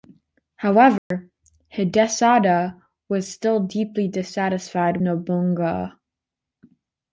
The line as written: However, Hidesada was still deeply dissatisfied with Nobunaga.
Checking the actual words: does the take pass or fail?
fail